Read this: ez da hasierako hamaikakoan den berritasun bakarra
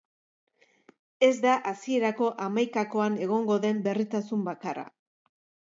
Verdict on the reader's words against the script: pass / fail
fail